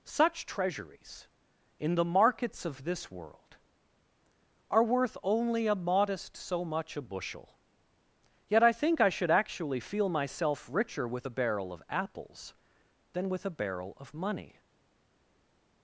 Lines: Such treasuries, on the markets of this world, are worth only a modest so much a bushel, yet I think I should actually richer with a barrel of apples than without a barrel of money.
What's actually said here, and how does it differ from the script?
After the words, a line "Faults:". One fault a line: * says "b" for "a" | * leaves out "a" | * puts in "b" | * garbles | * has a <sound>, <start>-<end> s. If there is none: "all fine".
Such treasuries, in the markets of this world, are worth only a modest so much a bushel, yet I think I should actually feel myself richer with a barrel of apples than with a barrel of money.
Faults:
* says "in" for "on"
* puts in "feel myself"
* says "with" for "without"